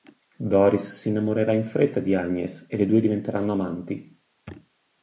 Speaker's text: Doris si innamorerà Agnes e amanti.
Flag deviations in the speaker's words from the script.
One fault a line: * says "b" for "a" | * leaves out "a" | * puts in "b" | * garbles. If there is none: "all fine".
* puts in "in fretta di"
* puts in "le due diventeranno"